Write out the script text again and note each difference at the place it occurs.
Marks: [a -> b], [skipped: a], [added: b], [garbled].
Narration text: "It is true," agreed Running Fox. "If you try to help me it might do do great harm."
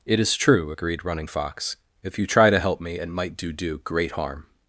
"It is true," agreed Running Fox. "If you try to help me it might do do great harm."